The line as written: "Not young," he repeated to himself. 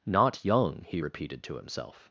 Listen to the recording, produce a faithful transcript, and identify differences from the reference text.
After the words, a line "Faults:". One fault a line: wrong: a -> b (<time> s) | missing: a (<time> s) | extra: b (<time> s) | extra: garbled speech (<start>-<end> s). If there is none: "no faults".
"Not young," he repeated to himself.
Faults:
no faults